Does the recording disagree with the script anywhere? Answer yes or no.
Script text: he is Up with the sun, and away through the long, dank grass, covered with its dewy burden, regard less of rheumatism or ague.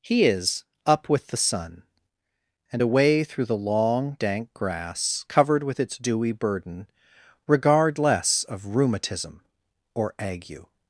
no